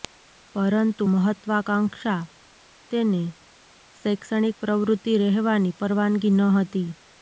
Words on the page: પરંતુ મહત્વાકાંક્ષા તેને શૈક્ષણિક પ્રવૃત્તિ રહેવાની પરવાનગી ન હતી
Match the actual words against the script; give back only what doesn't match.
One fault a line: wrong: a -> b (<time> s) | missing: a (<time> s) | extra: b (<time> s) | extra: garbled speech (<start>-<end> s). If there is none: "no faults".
no faults